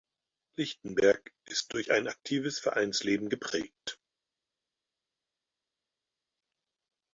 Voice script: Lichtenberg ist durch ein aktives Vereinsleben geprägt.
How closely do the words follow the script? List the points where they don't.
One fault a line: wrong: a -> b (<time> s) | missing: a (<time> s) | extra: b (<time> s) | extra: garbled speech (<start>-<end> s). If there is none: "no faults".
no faults